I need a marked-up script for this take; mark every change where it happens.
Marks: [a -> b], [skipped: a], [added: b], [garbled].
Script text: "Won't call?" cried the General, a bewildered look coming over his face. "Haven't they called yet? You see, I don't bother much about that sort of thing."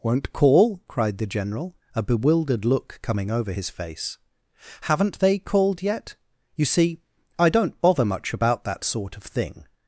"Won't call?" cried the General, a bewildered look coming over his face. "Haven't they called yet? You see, I don't bother much about that sort of thing."